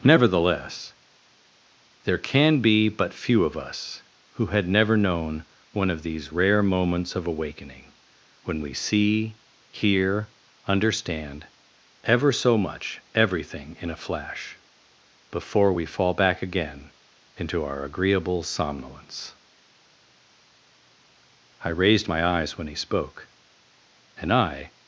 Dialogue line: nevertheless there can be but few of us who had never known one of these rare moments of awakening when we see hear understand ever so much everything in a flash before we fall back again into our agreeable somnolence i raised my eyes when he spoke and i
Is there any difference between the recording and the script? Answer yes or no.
no